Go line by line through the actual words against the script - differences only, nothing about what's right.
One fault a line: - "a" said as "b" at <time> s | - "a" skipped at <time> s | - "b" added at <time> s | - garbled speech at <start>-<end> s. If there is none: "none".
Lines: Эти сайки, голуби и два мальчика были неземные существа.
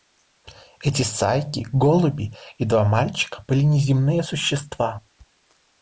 none